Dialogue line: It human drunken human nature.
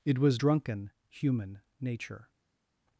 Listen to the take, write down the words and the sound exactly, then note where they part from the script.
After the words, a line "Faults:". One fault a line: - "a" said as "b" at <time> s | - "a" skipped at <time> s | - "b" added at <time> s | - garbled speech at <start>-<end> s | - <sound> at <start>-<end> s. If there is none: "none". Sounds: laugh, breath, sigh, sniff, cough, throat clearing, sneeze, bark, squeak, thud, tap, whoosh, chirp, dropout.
It was drunken human nature.
Faults:
- "human" said as "was" at 0.2 s